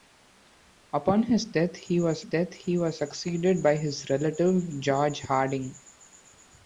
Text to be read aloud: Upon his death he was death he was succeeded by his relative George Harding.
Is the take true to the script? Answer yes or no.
yes